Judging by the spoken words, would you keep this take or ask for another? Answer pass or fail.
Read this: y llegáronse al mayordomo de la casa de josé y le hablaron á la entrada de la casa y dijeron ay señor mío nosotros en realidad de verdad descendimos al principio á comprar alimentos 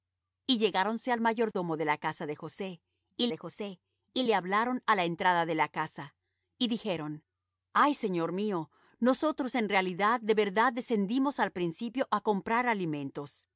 fail